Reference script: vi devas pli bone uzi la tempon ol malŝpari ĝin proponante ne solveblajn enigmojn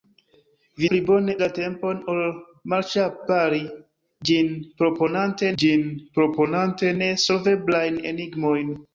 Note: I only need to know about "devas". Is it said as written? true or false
false